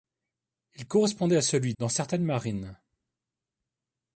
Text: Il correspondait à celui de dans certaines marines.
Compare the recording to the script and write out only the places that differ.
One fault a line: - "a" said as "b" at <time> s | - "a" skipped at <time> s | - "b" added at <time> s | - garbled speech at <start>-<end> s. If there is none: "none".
- "de" skipped at 1.7 s